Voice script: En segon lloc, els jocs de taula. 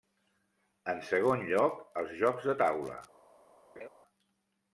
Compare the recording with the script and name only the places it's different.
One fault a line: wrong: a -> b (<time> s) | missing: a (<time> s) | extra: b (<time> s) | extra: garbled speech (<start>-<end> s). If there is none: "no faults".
no faults